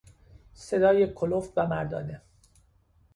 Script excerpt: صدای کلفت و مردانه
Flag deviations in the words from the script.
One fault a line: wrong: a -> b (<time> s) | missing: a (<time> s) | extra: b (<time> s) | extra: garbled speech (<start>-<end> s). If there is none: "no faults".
no faults